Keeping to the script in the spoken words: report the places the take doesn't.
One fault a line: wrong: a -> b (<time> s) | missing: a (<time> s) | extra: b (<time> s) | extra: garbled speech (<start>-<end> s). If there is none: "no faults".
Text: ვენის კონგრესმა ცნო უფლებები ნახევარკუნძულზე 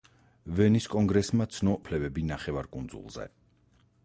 no faults